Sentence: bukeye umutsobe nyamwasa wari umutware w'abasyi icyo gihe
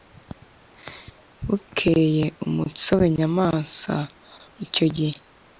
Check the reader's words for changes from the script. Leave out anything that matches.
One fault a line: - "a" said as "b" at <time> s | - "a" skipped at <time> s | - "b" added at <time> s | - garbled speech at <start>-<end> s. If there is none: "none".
- "wari umutware w'abasyi" skipped at 4.0 s